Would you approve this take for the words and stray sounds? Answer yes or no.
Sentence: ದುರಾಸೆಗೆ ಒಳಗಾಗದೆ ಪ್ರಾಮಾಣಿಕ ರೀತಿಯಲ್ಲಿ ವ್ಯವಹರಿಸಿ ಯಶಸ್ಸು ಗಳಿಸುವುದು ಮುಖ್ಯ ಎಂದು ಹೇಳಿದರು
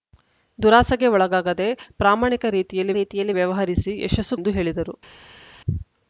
no